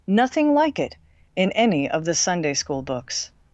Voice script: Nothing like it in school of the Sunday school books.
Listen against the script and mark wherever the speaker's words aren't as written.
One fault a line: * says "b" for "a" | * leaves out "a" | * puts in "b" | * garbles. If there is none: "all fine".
* says "any" for "school"